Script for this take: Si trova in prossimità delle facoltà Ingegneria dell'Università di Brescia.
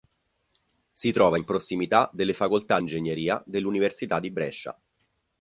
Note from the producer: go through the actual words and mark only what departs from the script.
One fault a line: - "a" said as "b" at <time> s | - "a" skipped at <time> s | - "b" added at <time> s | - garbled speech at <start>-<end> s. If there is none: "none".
none